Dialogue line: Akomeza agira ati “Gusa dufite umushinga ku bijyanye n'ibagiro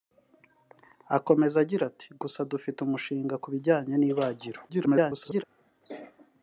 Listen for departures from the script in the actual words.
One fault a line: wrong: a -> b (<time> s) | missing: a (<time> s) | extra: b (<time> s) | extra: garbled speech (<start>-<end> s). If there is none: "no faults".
extra: garbled speech (4.7-5.4 s)